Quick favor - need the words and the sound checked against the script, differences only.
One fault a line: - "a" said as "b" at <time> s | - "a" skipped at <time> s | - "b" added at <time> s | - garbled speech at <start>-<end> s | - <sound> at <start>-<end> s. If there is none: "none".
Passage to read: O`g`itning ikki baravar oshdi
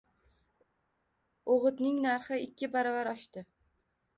- "narxi" added at 2.1 s